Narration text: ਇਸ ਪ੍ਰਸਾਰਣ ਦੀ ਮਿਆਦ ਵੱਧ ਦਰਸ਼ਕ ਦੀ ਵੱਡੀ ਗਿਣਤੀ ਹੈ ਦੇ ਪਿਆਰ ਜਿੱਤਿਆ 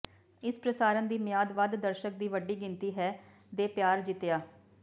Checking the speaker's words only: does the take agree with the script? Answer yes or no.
yes